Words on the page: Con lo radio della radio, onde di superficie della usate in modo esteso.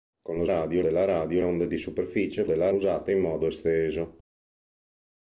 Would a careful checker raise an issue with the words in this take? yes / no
no